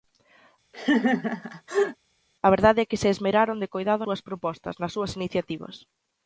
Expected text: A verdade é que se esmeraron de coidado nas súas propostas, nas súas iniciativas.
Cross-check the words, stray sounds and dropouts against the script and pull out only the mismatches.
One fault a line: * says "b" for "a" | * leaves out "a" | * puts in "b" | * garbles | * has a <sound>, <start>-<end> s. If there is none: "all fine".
* has a laugh, 0.7-2.0 s
* leaves out "nas"